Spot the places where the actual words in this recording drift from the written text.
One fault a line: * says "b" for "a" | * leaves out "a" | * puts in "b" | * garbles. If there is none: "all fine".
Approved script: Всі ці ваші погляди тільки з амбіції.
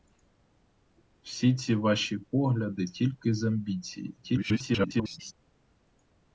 * garbles